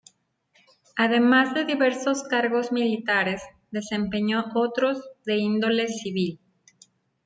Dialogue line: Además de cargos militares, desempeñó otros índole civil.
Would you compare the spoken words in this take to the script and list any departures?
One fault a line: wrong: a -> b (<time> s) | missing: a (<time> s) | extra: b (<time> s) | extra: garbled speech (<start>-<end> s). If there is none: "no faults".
extra: diversos (1.7 s)
extra: de (5.3 s)